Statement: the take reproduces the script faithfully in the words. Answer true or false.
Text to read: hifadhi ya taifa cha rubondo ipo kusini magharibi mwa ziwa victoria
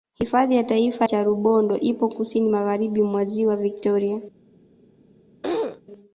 true